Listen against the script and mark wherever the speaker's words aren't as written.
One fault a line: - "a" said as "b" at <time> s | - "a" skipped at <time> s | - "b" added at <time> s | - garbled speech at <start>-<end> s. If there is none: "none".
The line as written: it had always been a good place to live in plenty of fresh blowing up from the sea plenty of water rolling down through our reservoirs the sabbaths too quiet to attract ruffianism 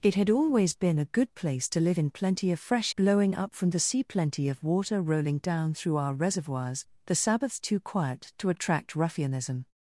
none